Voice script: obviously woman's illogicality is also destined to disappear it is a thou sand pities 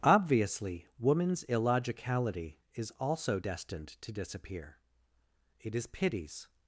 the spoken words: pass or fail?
fail